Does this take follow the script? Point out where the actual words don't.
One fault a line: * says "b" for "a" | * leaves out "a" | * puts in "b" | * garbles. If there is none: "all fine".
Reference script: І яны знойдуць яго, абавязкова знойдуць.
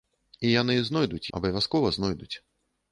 * leaves out "яго"